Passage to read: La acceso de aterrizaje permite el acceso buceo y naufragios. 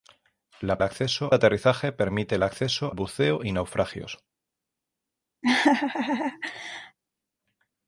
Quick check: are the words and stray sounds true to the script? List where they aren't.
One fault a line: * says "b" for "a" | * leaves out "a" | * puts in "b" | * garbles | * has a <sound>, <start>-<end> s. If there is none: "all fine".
* has a laugh, 5.4-7.0 s